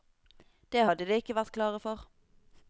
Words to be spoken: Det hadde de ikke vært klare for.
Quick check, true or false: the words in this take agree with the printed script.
true